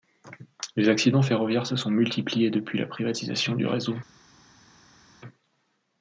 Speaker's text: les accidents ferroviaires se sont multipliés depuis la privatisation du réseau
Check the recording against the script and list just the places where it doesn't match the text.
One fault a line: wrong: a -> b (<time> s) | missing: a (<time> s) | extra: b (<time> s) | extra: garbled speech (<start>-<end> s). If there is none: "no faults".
no faults